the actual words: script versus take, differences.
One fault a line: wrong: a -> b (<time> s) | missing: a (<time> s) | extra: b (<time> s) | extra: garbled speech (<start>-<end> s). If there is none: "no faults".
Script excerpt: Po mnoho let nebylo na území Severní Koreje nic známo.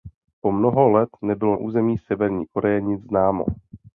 missing: na (1.6 s)